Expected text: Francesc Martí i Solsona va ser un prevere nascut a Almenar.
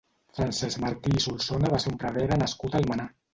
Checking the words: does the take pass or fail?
pass